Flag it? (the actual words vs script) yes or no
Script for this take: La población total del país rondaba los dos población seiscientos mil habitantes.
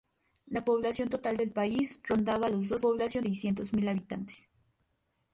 no